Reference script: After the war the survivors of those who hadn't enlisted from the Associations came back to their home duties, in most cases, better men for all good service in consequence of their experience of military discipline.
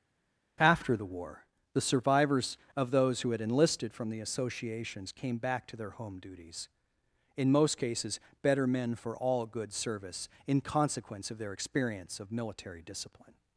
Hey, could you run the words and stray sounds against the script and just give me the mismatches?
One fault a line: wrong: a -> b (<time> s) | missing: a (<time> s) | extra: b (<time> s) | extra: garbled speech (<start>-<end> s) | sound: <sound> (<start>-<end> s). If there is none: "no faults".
wrong: hadn't -> had (3.3 s)